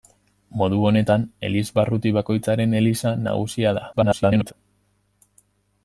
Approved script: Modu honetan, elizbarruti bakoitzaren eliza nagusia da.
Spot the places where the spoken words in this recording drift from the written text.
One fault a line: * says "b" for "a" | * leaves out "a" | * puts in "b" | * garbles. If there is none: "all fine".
* garbles